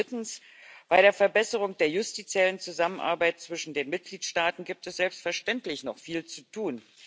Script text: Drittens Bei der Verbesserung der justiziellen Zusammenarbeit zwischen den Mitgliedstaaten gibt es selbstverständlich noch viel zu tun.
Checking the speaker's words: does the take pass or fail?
pass